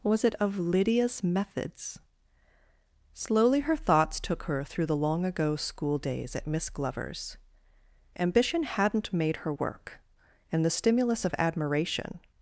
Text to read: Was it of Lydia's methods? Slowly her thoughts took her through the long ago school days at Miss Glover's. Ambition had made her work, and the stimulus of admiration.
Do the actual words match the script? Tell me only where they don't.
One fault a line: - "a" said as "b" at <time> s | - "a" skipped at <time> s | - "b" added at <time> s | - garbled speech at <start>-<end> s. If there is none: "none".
- "had" said as "hadn't" at 8.6 s